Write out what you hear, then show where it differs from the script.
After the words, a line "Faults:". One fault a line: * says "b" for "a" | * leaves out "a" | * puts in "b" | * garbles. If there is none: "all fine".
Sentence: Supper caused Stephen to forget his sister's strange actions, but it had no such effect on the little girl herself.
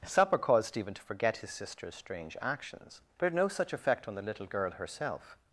Supper caused Stephen to forget his sister's strange actions, but had no such effect on the little girl herself.
Faults:
* leaves out "it"